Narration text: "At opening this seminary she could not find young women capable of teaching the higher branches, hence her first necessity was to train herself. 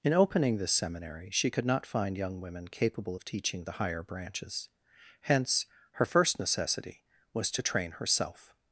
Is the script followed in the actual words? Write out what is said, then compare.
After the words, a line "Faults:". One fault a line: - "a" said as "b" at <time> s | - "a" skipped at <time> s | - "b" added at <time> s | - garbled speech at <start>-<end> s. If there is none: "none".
"In opening this seminary she could not find young women capable of teaching the higher branches, hence her first necessity was to train herself.
Faults:
- "At" said as "In" at 0.0 s